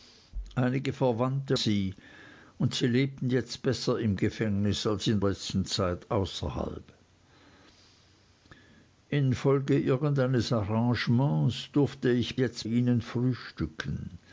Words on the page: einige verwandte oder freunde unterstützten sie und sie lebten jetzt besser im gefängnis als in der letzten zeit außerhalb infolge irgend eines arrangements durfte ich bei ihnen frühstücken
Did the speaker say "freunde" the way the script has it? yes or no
no